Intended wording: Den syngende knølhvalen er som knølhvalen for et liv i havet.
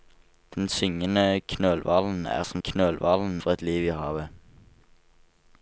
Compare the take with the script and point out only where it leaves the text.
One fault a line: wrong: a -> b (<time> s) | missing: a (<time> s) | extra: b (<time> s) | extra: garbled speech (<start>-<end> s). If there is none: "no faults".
no faults